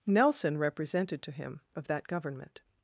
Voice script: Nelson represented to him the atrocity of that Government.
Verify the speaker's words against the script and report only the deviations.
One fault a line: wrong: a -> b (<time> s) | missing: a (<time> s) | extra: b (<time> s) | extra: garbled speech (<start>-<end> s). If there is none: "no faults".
missing: the atrocity (1.6 s)